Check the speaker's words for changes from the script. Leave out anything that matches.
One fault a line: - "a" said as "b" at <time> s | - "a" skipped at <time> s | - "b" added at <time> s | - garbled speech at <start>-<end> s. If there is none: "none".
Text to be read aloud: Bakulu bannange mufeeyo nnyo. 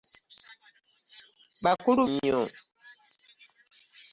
- "bannange mufeeyo" skipped at 2.0 s